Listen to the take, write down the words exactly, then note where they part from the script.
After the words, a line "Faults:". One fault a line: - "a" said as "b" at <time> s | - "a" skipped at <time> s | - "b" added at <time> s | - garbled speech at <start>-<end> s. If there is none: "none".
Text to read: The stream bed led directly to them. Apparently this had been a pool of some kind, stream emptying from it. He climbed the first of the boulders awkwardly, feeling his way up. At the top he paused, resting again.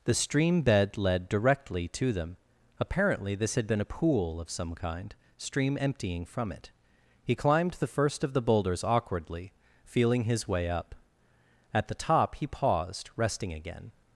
The stream bed led directly to them. Apparently this had been a pool of some kind, stream emptying from it. He climbed the first of the boulders awkwardly, feeling his way up. At the top he paused, resting again.
Faults:
none